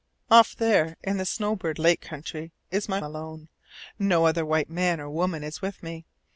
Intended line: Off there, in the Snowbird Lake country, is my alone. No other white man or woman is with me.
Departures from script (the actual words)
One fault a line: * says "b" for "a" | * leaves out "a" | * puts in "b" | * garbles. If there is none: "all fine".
all fine